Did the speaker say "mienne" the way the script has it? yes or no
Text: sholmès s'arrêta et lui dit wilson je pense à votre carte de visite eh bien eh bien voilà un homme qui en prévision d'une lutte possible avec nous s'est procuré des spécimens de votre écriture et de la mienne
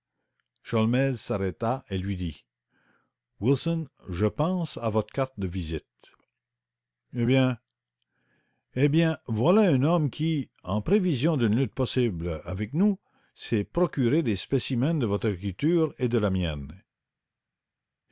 yes